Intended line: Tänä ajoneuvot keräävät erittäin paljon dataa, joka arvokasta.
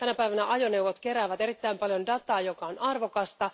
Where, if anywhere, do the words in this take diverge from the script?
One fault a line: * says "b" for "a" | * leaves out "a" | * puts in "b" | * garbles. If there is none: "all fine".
* puts in "päivänä"
* puts in "on"